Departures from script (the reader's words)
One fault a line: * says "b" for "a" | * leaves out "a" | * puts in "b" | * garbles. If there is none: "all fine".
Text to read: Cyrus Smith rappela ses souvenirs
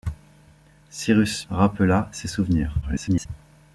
* leaves out "Smith"
* garbles